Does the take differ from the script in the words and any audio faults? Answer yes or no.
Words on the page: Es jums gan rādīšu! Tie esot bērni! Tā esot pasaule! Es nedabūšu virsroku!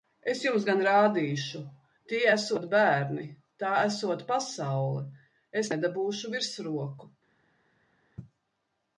no